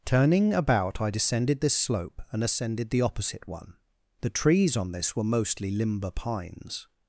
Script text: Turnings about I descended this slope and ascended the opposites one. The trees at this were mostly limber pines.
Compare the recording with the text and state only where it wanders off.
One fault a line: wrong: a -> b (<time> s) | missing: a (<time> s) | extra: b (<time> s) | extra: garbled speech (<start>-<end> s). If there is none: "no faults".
wrong: Turnings -> Turning (0.1 s)
wrong: opposites -> opposite (3.0 s)
wrong: at -> on (4.8 s)